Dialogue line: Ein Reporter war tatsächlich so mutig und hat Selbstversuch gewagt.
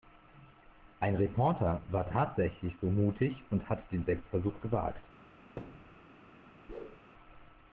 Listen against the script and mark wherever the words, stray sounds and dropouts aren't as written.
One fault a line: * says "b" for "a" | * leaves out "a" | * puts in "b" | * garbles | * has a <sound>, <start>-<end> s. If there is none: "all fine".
* puts in "den"
* has a thud, 5.6-6.1 s
* has a whoosh, 6.7-7.0 s